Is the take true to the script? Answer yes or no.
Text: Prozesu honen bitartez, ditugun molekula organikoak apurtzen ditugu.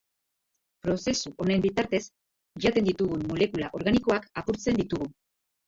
no